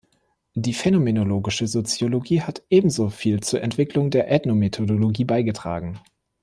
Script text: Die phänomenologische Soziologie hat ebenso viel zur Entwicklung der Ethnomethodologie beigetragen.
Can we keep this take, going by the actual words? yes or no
yes